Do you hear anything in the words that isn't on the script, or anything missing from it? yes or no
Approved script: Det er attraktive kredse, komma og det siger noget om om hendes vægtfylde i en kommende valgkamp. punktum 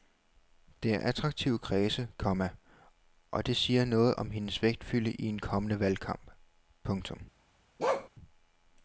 yes